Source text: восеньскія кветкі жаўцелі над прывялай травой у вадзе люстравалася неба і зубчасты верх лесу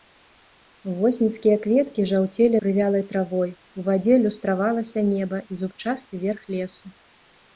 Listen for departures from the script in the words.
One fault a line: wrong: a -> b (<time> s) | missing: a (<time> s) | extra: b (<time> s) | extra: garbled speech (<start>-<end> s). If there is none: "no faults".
missing: над (2.6 s)